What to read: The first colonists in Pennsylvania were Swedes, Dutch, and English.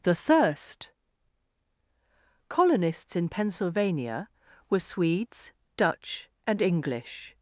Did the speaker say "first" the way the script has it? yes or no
no